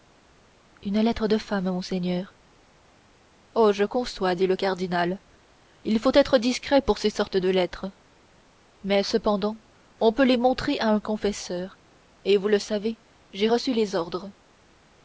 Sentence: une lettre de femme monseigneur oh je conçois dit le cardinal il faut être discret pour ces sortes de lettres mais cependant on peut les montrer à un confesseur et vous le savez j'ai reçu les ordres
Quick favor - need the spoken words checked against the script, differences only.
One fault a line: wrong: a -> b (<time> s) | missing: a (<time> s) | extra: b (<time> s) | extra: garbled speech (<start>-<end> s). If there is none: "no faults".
no faults